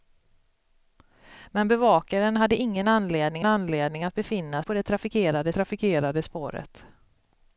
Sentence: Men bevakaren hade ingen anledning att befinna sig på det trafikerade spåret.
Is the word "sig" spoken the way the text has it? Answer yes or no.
no